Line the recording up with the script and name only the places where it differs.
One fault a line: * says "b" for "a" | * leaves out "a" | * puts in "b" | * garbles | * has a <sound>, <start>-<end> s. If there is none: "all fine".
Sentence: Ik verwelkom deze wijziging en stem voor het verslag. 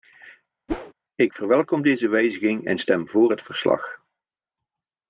* has a whoosh, 0.7-0.9 s